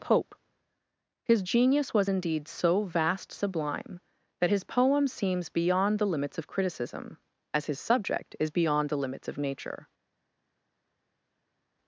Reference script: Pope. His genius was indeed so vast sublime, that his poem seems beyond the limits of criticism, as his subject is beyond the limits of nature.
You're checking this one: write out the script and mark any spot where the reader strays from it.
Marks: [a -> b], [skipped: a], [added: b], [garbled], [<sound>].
Pope. His genius was indeed so vast sublime, that his poem seems beyond the limits of criticism, as his subject is beyond the limits of nature.